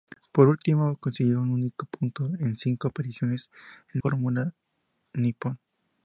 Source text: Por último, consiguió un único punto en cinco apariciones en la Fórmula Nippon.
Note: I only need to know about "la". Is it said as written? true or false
false